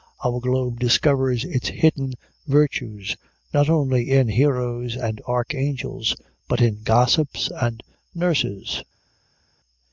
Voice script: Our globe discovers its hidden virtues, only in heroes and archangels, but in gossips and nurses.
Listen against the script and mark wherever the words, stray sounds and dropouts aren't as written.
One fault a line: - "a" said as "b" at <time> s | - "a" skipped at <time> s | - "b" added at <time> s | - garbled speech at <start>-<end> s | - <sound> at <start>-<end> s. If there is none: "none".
- "not" added at 3.5 s